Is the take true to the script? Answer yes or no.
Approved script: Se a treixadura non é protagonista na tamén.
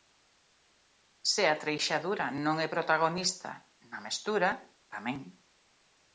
no